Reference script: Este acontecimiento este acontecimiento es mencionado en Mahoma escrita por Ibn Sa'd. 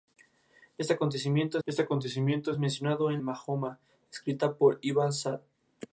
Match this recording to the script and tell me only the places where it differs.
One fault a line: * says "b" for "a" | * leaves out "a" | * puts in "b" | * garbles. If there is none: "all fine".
all fine